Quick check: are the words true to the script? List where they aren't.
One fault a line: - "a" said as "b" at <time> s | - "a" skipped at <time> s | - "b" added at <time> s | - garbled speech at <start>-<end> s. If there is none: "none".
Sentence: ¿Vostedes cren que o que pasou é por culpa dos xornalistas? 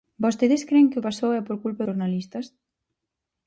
- "que" skipped at 1.1 s
- "dos" skipped at 1.9 s